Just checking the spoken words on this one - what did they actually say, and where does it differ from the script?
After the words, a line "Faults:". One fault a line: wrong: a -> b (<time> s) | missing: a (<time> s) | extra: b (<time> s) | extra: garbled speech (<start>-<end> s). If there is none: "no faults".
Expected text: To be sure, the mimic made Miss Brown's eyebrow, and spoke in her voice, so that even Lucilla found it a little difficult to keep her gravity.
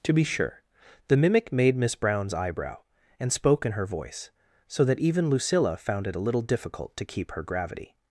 To be sure, the mimic made Miss Brown's eyebrow, and spoke in her voice, so that even Lucilla found it a little difficult to keep her gravity.
Faults:
no faults